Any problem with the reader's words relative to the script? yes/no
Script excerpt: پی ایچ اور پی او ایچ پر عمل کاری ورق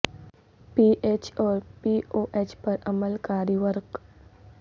no